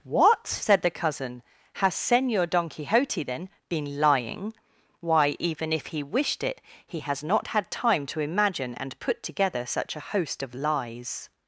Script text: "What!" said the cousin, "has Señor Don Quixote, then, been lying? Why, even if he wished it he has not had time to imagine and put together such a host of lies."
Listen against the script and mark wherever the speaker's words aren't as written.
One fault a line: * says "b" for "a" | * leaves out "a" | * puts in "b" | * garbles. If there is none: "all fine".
all fine